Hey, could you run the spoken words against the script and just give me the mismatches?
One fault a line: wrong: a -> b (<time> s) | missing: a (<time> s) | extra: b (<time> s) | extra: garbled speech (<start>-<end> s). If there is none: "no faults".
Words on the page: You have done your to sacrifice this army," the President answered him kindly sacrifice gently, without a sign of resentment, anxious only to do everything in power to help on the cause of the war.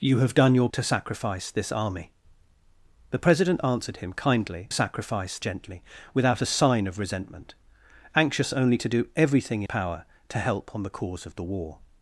no faults